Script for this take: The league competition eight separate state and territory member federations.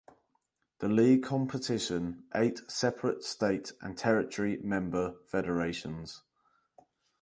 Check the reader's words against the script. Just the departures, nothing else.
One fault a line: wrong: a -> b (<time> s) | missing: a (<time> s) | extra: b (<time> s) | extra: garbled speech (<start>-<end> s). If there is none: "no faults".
no faults